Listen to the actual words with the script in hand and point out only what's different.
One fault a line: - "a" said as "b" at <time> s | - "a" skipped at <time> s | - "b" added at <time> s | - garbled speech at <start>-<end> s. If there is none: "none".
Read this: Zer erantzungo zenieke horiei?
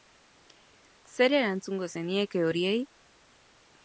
none